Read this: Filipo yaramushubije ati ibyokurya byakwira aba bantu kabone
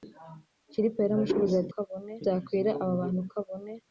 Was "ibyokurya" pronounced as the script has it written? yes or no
no